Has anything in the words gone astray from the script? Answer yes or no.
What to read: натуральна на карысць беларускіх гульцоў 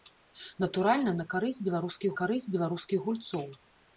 yes